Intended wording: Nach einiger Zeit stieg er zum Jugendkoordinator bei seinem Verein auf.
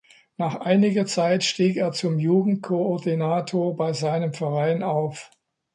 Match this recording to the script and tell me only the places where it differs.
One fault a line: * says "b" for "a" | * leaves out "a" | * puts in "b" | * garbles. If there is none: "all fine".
all fine